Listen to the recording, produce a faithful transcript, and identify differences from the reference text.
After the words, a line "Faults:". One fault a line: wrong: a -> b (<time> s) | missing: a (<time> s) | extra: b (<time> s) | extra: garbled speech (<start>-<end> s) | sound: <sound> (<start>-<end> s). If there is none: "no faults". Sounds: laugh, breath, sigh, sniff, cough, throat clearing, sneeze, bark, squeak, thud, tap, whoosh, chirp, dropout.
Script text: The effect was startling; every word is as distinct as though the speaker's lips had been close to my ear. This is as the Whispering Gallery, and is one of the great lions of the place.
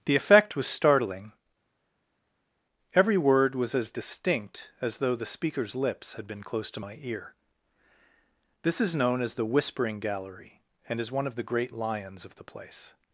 The effect was startling; every word was as distinct as though the speaker's lips had been close to my ear. This is known as the Whispering Gallery, and is one of the great lions of the place.
Faults:
wrong: is -> was (3.5 s)
extra: known (8.9 s)